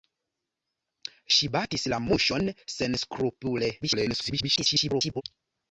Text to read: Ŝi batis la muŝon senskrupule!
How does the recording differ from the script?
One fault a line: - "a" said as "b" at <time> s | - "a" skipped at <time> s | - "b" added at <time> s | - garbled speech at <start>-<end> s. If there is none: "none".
- garbled speech at 3.8-5.2 s